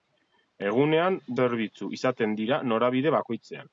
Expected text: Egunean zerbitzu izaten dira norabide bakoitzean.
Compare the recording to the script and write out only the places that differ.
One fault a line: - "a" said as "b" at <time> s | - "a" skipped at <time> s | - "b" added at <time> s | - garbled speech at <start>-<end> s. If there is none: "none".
none